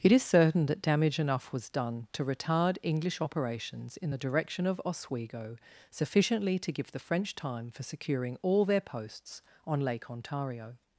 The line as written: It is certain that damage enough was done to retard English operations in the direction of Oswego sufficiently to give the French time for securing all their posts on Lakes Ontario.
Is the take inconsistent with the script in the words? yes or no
yes